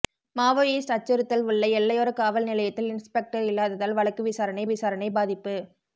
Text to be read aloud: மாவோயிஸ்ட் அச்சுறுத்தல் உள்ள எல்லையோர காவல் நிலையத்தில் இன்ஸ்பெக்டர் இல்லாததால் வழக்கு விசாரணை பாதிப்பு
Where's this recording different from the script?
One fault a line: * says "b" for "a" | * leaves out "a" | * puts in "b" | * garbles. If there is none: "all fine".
* puts in "விசாரணை"